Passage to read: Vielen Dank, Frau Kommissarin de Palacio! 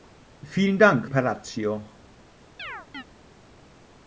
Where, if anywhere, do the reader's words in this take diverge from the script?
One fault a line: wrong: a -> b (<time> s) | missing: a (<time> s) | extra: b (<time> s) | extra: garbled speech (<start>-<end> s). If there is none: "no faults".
missing: Frau Kommissarin de (1.1 s)